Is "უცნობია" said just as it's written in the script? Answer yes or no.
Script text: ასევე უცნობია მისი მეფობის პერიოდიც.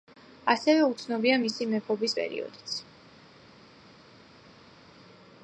yes